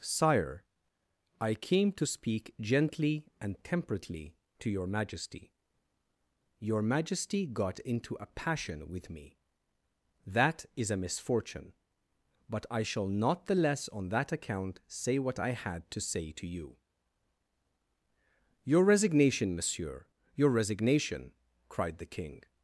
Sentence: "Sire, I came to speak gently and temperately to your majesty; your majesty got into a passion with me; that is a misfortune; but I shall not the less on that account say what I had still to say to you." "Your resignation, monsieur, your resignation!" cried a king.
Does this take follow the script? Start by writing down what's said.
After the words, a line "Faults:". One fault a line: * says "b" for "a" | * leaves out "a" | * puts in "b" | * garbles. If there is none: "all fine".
"Sire, I came to speak gently and temperately to your majesty; your majesty got into a passion with me; that is a misfortune; but I shall not the less on that account say what I had to say to you." "Your resignation, monsieur, your resignation!" cried the king.
Faults:
* leaves out "still"
* says "the" for "a"